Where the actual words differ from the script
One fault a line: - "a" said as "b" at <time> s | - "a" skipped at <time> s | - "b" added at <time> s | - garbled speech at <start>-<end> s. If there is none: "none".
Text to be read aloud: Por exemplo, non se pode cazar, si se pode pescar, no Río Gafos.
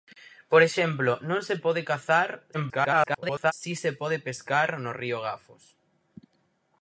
- garbled speech at 2.5-3.5 s